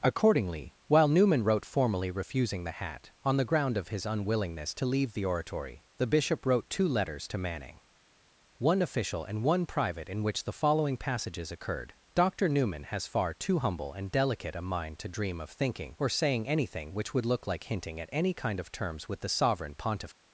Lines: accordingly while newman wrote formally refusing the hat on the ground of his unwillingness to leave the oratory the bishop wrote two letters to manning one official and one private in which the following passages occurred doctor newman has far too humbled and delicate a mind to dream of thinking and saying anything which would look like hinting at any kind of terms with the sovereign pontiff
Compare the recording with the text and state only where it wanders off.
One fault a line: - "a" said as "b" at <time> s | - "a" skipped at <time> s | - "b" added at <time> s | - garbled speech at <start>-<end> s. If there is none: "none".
- "humbled" said as "humble" at 13.6 s
- "and" said as "or" at 16.0 s